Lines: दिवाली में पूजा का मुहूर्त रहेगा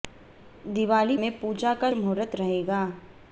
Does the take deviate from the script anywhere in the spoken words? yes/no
no